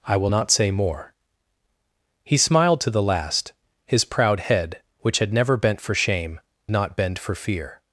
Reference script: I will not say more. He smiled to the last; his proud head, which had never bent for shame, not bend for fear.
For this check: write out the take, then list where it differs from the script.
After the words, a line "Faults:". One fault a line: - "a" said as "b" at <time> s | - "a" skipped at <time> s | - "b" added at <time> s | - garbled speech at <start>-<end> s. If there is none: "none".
I will not say more. He smiled to the last; his proud head, which had never bent for shame, not bend for fear.
Faults:
none